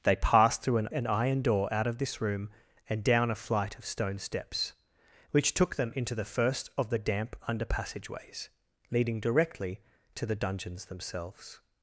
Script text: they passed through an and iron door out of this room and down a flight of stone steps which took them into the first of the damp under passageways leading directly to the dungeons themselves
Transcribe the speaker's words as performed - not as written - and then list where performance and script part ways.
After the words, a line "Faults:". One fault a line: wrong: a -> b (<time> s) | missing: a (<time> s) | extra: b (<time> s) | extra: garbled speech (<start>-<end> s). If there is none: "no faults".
they passed through an and iron door out of this room and down a flight of stone steps which took them into the first of the damp under passageways leading directly to the dungeons themselves
Faults:
no faults